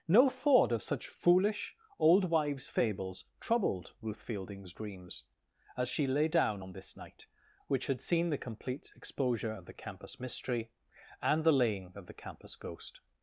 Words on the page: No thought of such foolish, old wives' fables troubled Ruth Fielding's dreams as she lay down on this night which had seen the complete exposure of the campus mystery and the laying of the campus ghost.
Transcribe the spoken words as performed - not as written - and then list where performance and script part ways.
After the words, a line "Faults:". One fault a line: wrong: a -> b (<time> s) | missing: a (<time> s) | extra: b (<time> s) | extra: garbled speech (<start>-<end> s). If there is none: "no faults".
No thought of such foolish, old wives' fables troubled Ruth Fielding's dreams as she lay down on this night which had seen the complete exposure of the campus mystery and the laying of the campus ghost.
Faults:
no faults